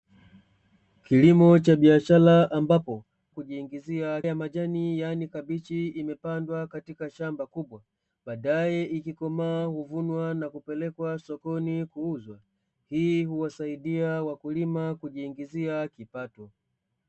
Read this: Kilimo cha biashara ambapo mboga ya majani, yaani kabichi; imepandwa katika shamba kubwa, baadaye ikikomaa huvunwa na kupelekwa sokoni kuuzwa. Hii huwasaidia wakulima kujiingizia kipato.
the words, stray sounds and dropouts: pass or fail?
fail